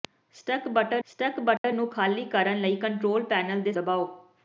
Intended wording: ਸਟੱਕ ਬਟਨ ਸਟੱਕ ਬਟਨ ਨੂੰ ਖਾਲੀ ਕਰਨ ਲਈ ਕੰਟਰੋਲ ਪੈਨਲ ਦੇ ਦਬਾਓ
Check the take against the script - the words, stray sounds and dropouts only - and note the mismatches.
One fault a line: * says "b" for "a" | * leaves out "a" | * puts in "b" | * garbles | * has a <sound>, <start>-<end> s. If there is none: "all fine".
* has a dropout, 1.6-1.6 s